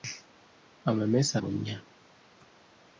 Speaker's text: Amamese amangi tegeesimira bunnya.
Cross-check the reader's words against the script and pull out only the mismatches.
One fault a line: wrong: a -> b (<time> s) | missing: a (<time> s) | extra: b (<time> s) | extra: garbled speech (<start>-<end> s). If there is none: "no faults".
missing: amangi tegeesimira (1.3 s)